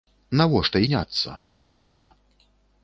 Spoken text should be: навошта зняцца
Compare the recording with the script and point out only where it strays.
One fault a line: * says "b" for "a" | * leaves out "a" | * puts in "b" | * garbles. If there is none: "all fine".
all fine